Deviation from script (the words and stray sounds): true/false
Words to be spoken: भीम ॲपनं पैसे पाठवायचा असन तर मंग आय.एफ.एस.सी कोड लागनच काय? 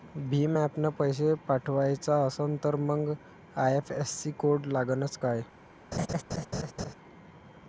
true